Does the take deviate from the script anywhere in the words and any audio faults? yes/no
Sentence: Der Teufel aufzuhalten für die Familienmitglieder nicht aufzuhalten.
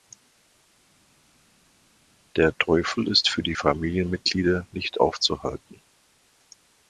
yes